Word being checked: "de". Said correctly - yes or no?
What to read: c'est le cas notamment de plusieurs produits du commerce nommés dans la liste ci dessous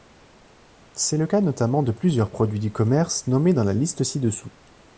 yes